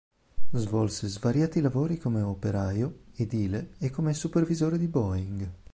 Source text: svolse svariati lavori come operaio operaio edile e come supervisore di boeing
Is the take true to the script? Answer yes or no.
no